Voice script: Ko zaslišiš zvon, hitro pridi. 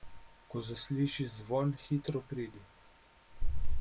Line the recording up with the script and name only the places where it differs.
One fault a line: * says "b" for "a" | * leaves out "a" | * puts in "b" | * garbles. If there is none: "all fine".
all fine